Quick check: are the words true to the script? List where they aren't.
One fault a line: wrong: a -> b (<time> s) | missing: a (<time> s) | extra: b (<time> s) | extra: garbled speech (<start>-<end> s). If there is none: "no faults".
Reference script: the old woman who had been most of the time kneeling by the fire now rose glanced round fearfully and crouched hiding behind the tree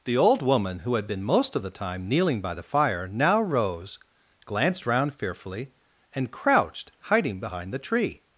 no faults